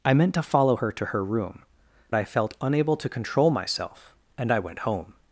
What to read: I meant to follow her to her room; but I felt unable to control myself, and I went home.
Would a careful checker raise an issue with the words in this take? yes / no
yes